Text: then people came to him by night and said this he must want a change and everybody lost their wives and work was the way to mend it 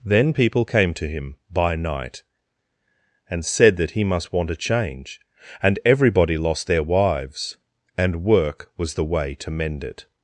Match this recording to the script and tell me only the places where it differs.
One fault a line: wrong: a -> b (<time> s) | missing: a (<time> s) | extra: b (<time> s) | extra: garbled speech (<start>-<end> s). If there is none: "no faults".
wrong: this -> that (3.8 s)